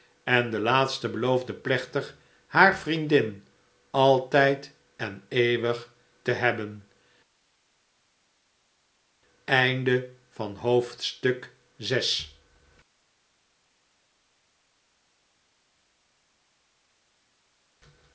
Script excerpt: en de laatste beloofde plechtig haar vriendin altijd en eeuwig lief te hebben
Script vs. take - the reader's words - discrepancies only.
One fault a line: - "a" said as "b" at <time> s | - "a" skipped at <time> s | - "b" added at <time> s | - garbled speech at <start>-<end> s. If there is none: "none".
- "lief" skipped at 5.9 s